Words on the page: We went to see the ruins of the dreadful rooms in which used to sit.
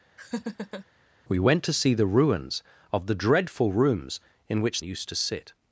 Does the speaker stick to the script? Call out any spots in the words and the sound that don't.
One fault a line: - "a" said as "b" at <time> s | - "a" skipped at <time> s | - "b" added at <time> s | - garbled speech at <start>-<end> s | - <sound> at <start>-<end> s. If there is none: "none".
- laugh at 0.2-0.9 s